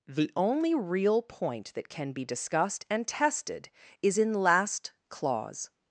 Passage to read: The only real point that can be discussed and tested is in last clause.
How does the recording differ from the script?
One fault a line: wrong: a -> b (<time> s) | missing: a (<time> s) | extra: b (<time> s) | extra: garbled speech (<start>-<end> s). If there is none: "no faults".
no faults